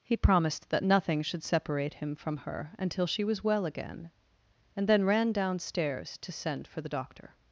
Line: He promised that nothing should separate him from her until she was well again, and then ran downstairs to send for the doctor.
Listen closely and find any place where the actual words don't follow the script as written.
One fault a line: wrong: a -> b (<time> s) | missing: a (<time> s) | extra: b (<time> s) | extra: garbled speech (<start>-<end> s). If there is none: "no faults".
no faults